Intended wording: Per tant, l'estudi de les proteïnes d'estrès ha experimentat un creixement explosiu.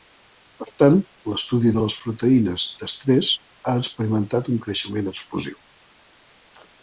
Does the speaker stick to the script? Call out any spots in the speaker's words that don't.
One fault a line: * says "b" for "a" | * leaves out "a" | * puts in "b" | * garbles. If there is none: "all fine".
all fine